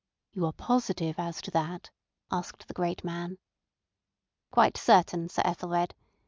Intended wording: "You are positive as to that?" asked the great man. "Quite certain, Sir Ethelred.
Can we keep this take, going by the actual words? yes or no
yes